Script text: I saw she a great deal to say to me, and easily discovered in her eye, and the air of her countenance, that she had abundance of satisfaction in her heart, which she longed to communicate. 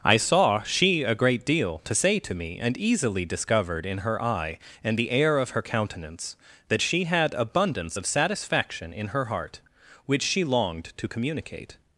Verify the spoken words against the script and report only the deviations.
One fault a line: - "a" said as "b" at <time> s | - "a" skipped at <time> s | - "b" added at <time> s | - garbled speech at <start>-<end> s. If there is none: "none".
none